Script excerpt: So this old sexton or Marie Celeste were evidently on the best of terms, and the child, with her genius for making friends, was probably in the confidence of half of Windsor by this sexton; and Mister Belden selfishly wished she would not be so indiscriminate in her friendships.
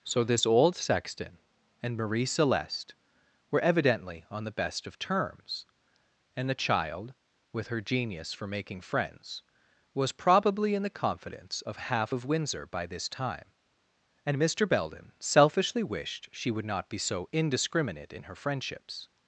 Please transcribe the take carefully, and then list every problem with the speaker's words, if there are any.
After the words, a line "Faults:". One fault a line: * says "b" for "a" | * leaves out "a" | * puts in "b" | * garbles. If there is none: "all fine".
So this old sexton and Marie Celeste were evidently on the best of terms, and the child, with her genius for making friends, was probably in the confidence of half of Windsor by this time; and Mister Belden selfishly wished she would not be so indiscriminate in her friendships.
Faults:
* says "and" for "or"
* says "time" for "sexton"